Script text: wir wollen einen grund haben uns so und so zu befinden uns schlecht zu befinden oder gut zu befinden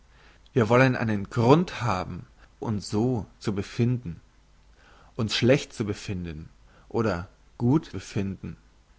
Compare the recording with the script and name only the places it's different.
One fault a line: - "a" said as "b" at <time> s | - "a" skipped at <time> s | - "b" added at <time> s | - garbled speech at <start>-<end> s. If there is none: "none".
- "uns so" skipped at 2.2 s
- "zu" skipped at 7.9 s